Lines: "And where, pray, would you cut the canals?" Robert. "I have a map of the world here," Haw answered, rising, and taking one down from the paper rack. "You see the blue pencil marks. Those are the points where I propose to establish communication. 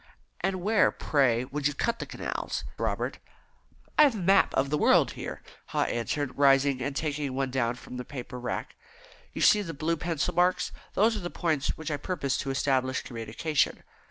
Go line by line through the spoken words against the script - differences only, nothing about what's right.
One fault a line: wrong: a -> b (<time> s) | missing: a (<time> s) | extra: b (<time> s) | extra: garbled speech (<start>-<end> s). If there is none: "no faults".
no faults